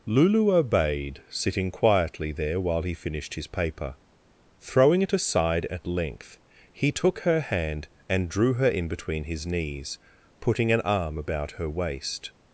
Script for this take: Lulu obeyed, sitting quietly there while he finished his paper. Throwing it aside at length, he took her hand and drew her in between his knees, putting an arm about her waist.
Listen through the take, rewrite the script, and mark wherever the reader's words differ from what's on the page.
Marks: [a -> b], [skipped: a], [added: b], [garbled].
Lulu obeyed, sitting quietly there while he finished his paper. Throwing it aside at length, he took her hand and drew her in between his knees, putting an arm about her waist.